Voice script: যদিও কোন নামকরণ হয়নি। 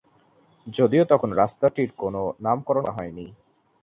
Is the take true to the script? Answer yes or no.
no